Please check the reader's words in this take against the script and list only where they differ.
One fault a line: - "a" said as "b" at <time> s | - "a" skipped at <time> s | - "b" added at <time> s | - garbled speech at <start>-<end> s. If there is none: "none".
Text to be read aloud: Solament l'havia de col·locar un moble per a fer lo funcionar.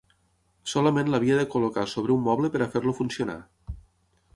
- "sobre" added at 1.9 s